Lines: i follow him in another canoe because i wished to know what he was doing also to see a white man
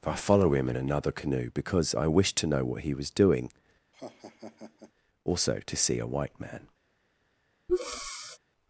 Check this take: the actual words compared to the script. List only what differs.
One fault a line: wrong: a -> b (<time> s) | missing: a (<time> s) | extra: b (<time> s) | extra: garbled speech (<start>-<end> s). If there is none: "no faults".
no faults